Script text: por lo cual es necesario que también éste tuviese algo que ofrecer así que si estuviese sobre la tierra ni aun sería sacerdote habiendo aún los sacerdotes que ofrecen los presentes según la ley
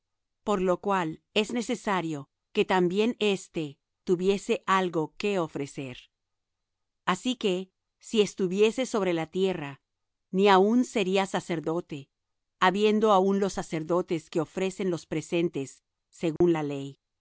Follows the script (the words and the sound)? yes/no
no